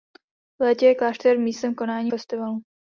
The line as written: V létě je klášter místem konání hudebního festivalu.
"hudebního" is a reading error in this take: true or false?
true